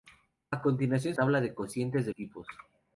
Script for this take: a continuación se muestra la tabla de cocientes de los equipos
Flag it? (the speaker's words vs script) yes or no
yes